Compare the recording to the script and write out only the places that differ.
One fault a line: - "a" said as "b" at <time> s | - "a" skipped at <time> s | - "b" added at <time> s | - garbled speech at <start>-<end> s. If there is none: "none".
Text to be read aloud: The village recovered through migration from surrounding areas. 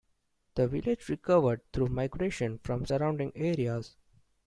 none